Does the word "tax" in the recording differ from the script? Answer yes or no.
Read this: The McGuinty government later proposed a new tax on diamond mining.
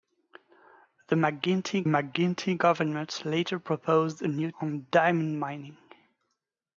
yes